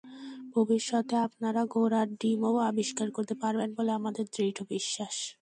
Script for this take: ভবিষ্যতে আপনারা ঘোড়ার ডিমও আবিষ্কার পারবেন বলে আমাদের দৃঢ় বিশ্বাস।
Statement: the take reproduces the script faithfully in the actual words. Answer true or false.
false